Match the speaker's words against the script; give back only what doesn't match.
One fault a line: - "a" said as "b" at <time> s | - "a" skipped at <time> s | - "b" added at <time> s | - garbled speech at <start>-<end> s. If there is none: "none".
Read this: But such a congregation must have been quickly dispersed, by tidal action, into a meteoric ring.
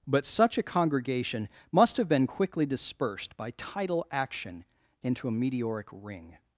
none